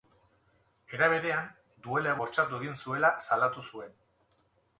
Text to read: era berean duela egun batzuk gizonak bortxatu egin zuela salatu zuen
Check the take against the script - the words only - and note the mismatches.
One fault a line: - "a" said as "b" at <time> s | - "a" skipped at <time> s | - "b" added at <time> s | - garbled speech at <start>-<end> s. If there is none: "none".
- "egun batzuk gizonak" skipped at 2.1 s